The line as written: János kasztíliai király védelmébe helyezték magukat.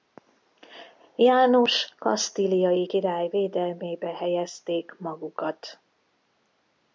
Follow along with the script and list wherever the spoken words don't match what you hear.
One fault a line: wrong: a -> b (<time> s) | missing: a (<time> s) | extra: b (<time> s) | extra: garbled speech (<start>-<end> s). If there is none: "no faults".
no faults